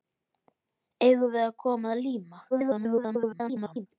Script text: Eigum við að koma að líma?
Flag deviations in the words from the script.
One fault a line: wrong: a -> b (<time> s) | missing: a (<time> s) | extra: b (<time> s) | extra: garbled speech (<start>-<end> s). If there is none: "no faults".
extra: garbled speech (2.5-3.9 s)